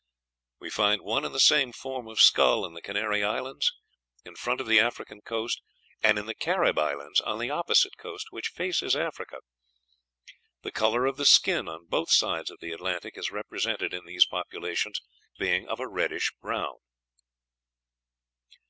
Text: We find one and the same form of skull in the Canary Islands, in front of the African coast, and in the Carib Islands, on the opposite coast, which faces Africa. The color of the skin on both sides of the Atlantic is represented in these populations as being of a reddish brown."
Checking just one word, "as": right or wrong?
wrong